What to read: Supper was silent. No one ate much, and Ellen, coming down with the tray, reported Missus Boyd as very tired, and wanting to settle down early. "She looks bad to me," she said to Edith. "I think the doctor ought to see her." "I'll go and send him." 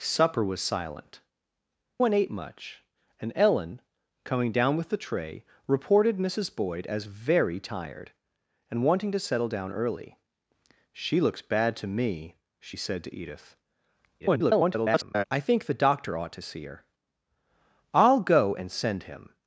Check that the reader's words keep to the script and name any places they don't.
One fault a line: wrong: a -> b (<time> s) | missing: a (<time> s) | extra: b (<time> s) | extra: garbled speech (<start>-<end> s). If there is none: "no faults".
missing: No (1.2 s)
extra: garbled speech (14.2-15.2 s)